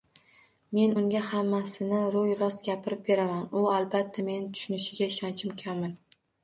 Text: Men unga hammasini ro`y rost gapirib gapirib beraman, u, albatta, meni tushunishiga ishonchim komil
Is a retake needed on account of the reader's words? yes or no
yes